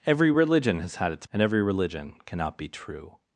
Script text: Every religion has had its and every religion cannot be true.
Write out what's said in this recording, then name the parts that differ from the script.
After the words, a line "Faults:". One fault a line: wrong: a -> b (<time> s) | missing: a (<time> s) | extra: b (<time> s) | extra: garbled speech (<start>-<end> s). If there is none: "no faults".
Every religion has had its and every religion cannot be true.
Faults:
no faults